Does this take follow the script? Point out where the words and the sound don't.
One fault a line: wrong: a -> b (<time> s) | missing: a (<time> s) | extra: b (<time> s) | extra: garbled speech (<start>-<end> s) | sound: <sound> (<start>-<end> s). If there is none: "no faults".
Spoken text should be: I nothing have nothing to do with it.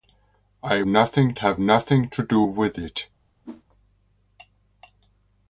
sound: whoosh (3.4-3.6 s)